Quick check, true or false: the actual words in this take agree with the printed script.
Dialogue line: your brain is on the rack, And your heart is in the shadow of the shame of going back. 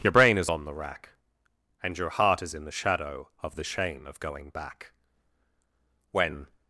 false